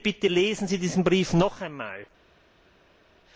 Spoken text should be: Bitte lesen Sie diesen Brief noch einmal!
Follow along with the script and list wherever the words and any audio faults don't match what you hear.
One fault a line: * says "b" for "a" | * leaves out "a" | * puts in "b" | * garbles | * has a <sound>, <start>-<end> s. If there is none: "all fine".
all fine